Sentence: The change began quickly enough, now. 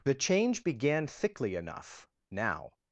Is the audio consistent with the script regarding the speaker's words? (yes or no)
no